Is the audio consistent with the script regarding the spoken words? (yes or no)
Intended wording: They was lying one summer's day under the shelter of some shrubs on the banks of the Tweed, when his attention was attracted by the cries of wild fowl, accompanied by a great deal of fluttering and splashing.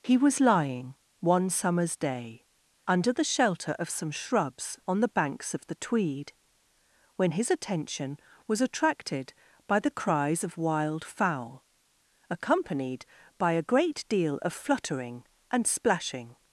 no